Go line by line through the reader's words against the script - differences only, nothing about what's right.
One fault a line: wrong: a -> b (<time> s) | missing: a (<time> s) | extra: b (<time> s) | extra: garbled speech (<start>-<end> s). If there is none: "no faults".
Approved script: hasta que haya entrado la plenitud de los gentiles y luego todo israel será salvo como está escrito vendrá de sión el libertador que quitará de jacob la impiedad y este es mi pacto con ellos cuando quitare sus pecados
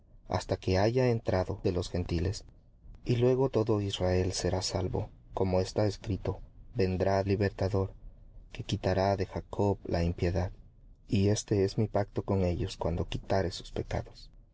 missing: la plenitud (1.6 s)
missing: de sión el (7.2 s)